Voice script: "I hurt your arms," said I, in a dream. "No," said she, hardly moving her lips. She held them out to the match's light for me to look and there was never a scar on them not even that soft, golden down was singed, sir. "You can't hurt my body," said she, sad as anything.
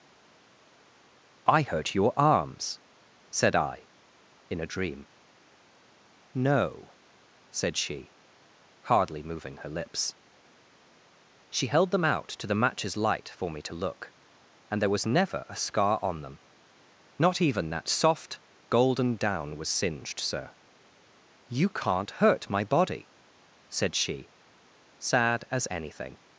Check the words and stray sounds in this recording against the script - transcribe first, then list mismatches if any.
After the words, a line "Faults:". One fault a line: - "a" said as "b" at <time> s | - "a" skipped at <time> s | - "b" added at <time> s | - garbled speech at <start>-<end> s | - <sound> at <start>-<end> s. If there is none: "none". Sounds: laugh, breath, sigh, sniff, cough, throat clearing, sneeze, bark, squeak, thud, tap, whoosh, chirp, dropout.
"I hurt your arms," said I, in a dream. "No," said she, hardly moving her lips. She held them out to the match's light for me to look and there was never a scar on them not even that soft, golden down was singed, sir. "You can't hurt my body," said she, sad as anything.
Faults:
none